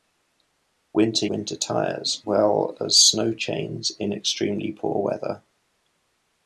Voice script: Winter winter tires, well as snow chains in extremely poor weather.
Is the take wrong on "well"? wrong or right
right